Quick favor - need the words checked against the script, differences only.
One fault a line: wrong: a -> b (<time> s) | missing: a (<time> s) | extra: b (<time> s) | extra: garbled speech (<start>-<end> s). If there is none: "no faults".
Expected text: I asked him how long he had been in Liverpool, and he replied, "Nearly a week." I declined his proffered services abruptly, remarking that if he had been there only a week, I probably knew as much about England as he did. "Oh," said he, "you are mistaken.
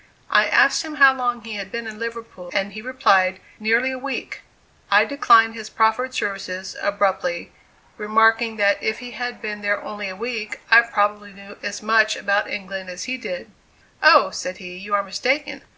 no faults